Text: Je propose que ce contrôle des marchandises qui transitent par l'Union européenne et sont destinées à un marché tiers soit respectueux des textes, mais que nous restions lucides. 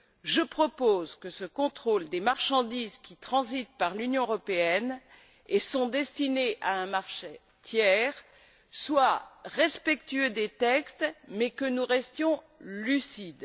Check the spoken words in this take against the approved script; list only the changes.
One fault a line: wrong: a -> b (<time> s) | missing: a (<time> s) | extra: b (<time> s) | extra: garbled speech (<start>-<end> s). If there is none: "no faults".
no faults